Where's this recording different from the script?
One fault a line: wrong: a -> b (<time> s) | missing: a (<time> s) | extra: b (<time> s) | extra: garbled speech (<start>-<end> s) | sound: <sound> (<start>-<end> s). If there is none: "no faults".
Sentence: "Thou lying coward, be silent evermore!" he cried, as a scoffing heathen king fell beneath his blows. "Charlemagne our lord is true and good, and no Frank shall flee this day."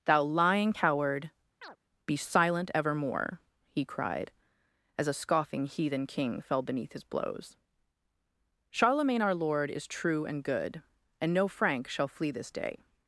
sound: chirp (1.6-1.8 s)